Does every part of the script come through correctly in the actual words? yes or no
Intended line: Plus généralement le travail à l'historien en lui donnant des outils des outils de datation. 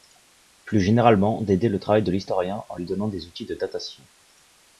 no